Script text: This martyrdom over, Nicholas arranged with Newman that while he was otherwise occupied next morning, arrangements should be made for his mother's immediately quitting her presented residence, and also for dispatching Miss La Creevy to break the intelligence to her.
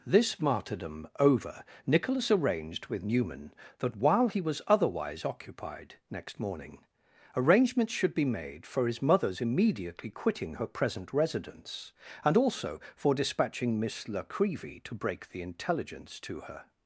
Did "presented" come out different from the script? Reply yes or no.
yes